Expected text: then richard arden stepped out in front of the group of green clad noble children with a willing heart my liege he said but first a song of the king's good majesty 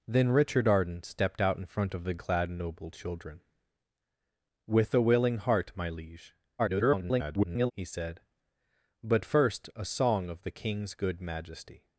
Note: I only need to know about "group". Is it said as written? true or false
false